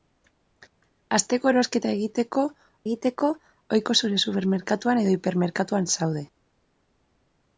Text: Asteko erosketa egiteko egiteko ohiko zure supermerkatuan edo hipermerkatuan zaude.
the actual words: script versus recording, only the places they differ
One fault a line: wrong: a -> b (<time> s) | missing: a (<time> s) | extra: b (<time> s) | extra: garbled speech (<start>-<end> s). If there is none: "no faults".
no faults